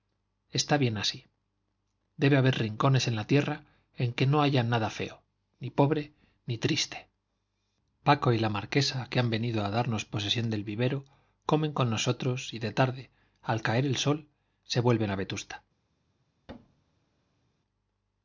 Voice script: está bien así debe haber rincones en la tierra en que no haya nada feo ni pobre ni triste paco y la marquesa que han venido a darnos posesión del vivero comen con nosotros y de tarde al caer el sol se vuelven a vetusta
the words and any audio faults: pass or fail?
fail